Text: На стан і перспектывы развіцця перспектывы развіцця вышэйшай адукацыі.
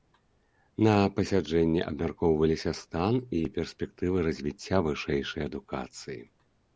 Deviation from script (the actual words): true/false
true